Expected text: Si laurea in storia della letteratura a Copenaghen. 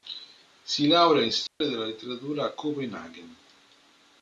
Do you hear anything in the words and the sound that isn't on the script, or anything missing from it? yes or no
yes